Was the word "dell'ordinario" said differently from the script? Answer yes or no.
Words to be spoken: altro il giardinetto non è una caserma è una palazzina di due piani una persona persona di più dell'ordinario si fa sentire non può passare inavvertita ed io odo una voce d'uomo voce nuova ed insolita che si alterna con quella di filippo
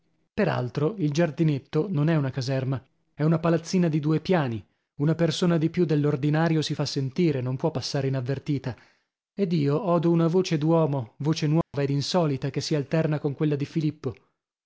no